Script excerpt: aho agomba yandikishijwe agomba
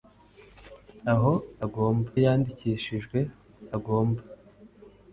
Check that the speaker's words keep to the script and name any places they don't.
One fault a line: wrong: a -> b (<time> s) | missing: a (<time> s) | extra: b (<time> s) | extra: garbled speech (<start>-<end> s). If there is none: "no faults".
no faults